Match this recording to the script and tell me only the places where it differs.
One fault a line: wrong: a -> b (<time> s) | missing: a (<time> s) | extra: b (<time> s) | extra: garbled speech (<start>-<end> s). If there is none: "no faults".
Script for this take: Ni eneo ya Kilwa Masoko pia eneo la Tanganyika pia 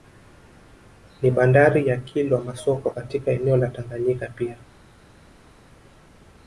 wrong: eneo -> bandari (1.3 s)
wrong: pia -> katika (2.9 s)